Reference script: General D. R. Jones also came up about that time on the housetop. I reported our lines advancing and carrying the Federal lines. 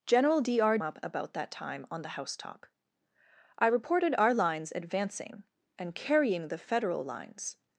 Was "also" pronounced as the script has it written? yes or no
no